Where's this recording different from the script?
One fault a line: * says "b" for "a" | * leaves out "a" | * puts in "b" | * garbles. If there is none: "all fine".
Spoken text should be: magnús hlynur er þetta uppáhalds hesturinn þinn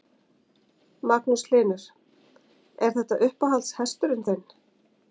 all fine